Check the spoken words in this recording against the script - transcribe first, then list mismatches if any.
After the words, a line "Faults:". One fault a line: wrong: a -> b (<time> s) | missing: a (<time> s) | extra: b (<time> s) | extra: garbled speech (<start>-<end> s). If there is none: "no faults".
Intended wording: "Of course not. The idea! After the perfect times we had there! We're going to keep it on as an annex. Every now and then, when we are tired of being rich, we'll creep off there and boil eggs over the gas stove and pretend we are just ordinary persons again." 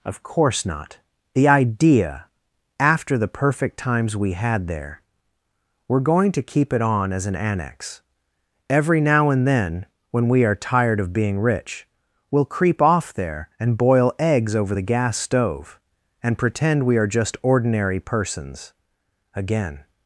"Of course not. The idea! After the perfect times we had there! We're going to keep it on as an annex. Every now and then, when we are tired of being rich, we'll creep off there and boil eggs over the gas stove and pretend we are just ordinary persons again."
Faults:
no faults